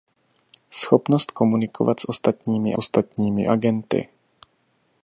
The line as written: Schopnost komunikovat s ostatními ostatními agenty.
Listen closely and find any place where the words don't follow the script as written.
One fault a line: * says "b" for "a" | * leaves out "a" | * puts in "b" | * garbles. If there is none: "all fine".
all fine